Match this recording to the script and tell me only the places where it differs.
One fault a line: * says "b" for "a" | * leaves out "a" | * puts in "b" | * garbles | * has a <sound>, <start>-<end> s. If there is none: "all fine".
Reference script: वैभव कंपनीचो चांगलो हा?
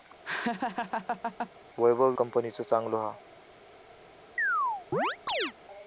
* has a laugh, 0.2-1.5 s
* has a chirp, 4.4-5.5 s